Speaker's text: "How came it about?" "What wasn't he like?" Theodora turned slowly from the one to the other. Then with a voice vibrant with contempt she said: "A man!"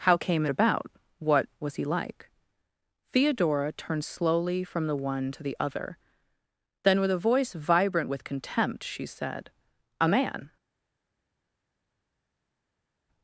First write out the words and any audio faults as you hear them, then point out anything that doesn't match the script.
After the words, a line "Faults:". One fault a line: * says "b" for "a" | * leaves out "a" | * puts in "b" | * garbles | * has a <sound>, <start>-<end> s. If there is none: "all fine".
"How came it about?" "What was he like?" Theodora turned slowly from the one to the other. Then with a voice vibrant with contempt she said: "A man!"
Faults:
* says "was" for "wasn't"